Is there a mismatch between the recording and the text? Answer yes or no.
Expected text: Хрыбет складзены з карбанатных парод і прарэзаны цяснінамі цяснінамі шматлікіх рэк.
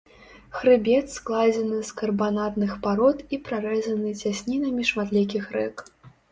yes